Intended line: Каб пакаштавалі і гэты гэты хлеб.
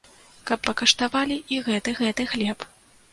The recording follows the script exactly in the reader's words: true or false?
true